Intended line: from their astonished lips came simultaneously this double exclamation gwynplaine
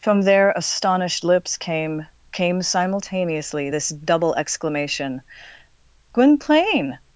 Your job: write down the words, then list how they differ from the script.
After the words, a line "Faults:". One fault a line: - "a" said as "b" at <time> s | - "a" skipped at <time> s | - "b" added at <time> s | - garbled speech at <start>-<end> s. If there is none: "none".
from their astonished lips came came simultaneously this double exclamation gwynplaine
Faults:
- "came" added at 2.3 s